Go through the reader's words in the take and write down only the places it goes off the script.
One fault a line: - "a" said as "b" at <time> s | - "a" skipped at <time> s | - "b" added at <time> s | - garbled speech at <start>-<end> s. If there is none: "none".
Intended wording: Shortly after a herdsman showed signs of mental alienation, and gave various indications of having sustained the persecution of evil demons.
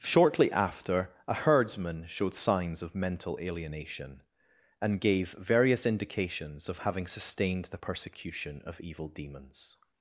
none